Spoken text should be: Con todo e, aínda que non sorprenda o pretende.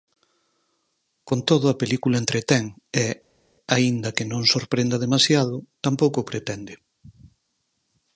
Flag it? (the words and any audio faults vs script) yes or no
yes